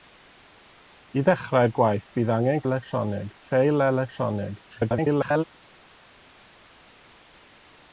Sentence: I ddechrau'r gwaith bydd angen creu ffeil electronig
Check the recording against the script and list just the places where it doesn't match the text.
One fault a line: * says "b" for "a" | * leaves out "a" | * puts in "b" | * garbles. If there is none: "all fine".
* says "electronig" for "creu"
* garbles